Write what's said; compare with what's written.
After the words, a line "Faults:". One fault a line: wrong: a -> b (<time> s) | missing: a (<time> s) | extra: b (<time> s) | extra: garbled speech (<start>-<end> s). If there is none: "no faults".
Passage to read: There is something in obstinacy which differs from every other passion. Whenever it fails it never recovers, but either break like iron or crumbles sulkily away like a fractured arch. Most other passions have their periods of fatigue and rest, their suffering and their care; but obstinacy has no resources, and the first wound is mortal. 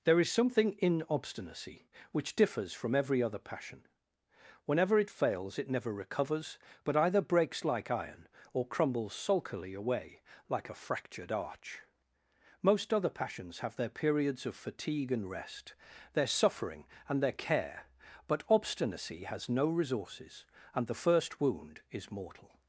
There is something in obstinacy which differs from every other passion. Whenever it fails it never recovers, but either breaks like iron or crumbles sulkily away like a fractured arch. Most other passions have their periods of fatigue and rest, their suffering and their care; but obstinacy has no resources, and the first wound is mortal.
Faults:
wrong: break -> breaks (7.2 s)